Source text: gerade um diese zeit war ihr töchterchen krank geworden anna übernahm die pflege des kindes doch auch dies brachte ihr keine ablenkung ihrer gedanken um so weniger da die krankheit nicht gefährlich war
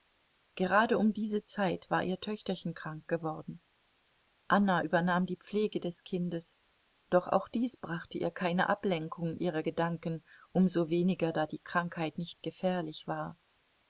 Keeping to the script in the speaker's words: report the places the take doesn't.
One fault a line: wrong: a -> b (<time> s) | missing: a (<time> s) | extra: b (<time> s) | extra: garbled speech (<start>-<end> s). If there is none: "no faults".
no faults